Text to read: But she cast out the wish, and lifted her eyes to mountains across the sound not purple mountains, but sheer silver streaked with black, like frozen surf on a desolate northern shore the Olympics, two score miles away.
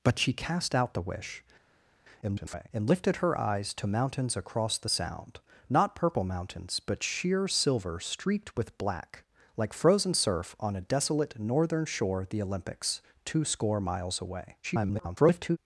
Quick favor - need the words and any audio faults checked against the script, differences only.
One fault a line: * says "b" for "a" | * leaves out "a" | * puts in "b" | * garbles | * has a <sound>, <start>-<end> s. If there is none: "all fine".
* garbles
* garbles